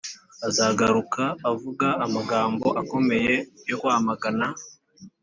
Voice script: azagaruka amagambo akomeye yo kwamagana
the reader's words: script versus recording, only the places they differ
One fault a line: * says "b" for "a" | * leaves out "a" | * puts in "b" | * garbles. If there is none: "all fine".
* puts in "avuga"